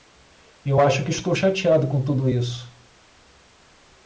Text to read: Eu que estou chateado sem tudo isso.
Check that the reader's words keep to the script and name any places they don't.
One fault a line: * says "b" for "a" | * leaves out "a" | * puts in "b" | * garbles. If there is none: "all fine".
* puts in "acho"
* says "com" for "sem"